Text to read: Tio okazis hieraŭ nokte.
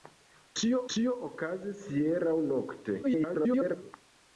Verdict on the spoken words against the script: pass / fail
fail